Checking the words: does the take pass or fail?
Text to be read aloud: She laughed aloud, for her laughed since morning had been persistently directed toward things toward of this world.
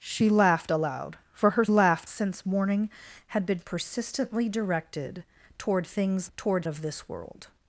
pass